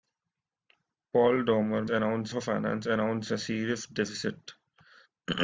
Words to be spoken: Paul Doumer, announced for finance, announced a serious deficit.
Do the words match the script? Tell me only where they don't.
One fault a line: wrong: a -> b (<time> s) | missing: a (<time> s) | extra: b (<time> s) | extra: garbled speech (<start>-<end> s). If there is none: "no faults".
no faults